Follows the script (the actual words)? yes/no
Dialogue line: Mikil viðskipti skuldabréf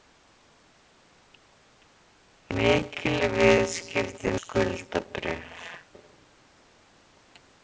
yes